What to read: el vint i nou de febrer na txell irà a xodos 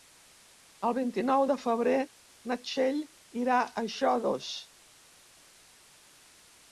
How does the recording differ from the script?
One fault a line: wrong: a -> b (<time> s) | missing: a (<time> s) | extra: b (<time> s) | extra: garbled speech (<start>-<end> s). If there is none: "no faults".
no faults